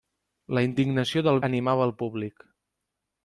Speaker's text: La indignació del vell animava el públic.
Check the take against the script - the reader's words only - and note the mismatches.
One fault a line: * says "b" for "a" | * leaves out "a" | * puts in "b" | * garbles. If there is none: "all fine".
* leaves out "vell"